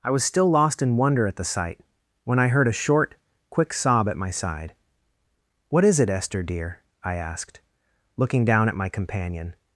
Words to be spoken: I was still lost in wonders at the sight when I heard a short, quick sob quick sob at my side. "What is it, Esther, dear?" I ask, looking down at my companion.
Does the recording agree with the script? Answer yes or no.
no